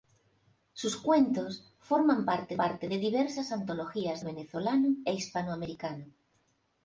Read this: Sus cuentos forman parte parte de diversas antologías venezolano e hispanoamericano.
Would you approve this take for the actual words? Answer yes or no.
yes